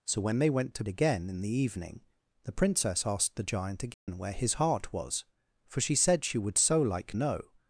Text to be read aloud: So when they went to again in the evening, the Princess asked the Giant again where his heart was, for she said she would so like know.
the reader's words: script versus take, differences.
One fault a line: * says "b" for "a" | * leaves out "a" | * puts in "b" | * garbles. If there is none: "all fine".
all fine